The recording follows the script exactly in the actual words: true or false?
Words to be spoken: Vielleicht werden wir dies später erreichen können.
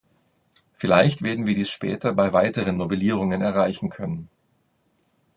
false